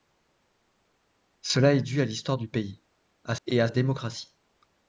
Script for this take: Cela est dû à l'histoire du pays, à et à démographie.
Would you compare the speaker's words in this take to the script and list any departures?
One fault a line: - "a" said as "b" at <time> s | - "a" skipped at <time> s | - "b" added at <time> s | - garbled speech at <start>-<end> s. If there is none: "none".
none